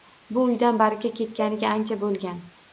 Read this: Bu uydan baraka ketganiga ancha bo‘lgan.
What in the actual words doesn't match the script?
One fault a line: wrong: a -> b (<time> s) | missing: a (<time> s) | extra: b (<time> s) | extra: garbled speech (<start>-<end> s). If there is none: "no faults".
no faults